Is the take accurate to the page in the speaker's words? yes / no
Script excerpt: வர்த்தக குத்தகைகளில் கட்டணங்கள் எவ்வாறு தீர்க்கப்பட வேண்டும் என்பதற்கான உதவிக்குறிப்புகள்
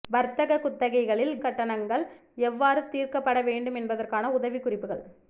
yes